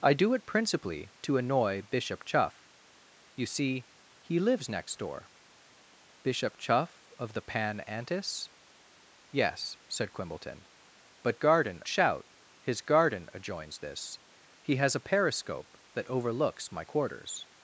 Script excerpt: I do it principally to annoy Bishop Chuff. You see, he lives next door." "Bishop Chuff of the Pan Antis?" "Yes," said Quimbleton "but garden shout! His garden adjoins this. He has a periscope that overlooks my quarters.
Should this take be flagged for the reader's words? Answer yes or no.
no